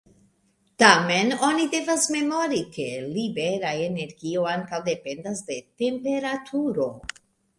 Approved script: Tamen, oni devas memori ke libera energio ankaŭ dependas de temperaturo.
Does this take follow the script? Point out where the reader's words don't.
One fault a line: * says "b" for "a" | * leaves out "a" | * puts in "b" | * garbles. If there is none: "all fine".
all fine